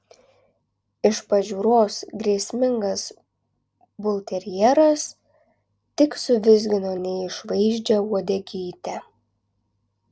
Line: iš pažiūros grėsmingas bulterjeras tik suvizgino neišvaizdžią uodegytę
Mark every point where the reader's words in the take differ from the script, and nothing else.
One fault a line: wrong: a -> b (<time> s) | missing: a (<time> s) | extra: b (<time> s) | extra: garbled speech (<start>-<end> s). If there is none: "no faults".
no faults